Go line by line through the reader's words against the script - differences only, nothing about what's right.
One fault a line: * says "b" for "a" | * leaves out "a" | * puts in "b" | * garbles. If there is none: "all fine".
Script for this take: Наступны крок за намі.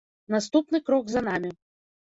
all fine